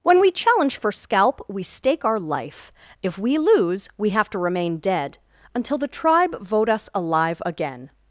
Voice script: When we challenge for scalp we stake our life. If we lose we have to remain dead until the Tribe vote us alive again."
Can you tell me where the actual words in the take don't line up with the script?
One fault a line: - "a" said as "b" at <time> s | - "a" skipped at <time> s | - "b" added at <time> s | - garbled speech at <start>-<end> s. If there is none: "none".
none